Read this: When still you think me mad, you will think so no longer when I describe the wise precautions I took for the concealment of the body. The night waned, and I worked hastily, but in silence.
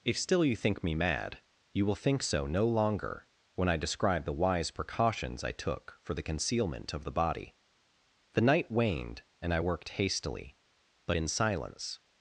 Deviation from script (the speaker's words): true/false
true